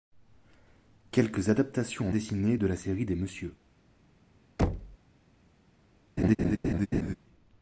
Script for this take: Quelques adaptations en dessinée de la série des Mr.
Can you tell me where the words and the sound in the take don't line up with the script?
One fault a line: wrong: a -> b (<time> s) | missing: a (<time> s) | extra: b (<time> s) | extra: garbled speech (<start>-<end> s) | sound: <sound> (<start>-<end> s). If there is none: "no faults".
sound: thud (4.6-5.0 s)
sound: laugh (6.2-7.2 s)